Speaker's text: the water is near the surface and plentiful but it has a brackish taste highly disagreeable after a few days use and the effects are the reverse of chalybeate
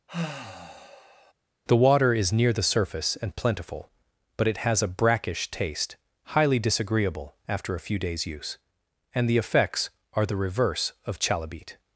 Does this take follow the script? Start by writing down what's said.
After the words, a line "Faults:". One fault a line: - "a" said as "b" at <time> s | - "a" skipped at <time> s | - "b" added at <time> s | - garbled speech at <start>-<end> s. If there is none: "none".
the water is near the surface and plentiful but it has a brackish taste highly disagreeable after a few days use and the effects are the reverse of chalybeate
Faults:
none